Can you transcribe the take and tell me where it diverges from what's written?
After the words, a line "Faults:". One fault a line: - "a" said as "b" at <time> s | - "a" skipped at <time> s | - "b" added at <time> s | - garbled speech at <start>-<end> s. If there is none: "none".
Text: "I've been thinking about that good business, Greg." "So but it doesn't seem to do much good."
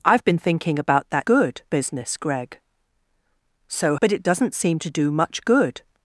"I've been thinking about that good business, Greg." "So but it doesn't seem to do much good."
Faults:
none